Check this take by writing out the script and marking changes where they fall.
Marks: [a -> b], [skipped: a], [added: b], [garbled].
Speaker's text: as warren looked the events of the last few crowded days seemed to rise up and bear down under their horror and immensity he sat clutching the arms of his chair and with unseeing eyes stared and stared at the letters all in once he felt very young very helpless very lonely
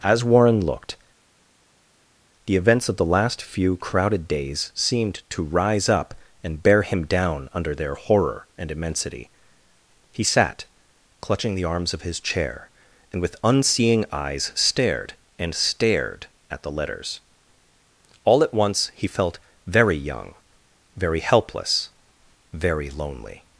as warren looked the events of the last few crowded days seemed to rise up and bear [added: him] down under their horror and immensity he sat clutching the arms of his chair and with unseeing eyes stared and stared at the letters all [in -> at] once he felt very young very helpless very lonely